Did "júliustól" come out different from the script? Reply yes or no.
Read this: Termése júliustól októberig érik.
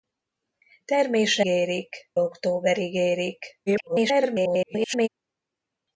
yes